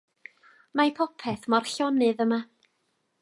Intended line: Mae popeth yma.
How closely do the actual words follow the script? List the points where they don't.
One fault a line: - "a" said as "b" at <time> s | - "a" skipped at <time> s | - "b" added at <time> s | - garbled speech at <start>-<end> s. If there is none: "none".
- "mor llonydd" added at 1.5 s